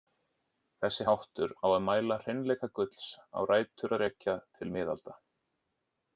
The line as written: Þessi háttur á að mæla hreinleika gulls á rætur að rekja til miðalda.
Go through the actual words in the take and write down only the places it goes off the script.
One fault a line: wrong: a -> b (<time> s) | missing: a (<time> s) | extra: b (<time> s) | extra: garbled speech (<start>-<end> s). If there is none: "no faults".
no faults